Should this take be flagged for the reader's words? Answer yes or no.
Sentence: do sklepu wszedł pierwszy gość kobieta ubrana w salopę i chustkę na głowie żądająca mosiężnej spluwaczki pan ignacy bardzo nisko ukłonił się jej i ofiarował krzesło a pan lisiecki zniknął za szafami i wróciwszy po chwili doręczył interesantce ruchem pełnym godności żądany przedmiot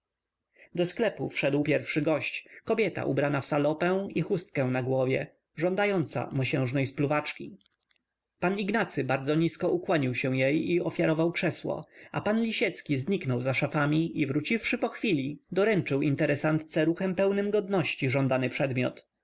no